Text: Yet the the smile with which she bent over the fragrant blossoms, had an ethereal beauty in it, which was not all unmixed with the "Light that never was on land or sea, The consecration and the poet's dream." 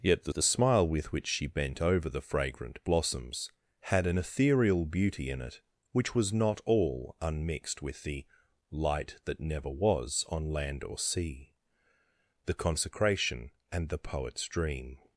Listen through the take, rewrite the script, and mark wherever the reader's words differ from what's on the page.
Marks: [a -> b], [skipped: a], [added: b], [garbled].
Yet the the smile with which she bent over the fragrant blossoms, had an ethereal beauty in it, which was not all unmixed with the "Light that never was on land or sea, The consecration and the poet's dream."